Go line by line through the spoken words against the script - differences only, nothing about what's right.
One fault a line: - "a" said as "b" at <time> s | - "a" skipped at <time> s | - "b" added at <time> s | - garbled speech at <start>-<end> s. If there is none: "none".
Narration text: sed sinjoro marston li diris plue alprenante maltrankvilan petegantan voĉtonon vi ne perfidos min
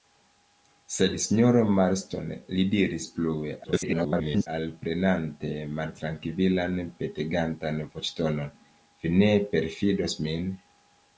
- garbled speech at 3.6-4.5 s